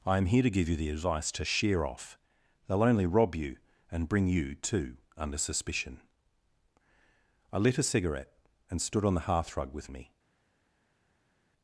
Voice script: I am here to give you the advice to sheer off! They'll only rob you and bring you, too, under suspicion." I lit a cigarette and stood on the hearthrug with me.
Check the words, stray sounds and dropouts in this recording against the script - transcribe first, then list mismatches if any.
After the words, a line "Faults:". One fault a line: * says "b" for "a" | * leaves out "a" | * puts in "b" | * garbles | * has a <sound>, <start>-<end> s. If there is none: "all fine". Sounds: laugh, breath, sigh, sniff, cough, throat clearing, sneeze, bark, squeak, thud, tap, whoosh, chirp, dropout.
I am here to give you the advice to sheer off! They'll only rob you and bring you, too, under suspicion." I lit a cigarette and stood on the hearthrug with me.
Faults:
all fine